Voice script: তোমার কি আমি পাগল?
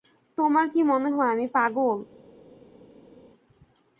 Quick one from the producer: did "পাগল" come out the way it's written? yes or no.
yes